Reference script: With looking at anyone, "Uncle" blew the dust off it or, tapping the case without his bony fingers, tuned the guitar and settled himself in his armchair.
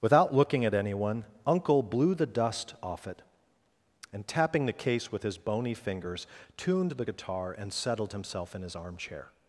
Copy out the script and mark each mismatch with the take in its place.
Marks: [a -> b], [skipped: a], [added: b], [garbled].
[With -> Without] looking at anyone, "Uncle" blew the dust off it [or, -> and] tapping the case [without -> with] his bony fingers, tuned the guitar and settled himself in his armchair.